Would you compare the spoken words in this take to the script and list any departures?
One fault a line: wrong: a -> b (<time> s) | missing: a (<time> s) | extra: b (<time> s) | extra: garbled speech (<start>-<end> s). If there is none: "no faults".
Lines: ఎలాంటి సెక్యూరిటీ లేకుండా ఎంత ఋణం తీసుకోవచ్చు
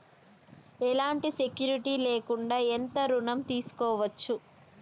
no faults